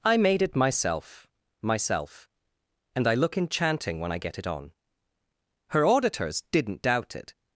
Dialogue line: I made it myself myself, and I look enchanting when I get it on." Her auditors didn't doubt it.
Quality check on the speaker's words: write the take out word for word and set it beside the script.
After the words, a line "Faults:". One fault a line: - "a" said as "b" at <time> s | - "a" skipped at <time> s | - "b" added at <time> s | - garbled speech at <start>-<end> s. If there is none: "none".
I made it myself myself, and I look enchanting when I get it on." Her auditors didn't doubt it.
Faults:
none